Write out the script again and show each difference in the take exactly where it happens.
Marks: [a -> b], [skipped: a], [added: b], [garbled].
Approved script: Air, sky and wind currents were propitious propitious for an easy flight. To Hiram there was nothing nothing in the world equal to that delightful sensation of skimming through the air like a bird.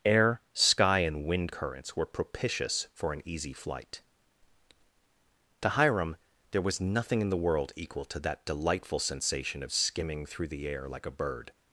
Air, sky and wind currents were propitious [skipped: propitious] for an easy flight. To Hiram there was nothing [skipped: nothing] in the world equal to that delightful sensation of skimming through the air like a bird.